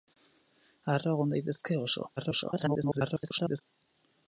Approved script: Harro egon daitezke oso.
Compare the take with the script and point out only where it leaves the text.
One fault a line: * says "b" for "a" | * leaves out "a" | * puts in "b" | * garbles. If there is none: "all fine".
* garbles